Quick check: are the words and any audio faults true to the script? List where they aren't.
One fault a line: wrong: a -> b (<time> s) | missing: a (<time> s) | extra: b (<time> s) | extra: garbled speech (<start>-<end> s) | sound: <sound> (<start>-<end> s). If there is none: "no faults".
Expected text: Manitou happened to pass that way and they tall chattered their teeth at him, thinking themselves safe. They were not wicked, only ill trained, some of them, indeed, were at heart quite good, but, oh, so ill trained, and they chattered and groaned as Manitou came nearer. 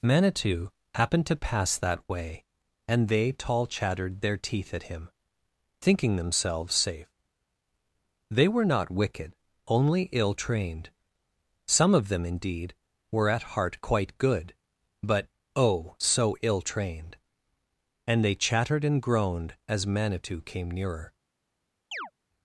sound: chirp (21.9-22.1 s)